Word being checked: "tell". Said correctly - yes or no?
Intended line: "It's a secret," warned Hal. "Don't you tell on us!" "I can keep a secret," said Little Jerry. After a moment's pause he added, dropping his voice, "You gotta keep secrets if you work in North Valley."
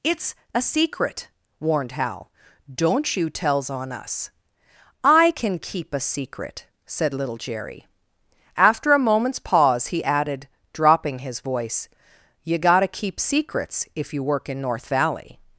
no